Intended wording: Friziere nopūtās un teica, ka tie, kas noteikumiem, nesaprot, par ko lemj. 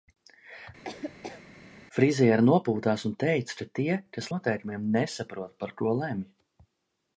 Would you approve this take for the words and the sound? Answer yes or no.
no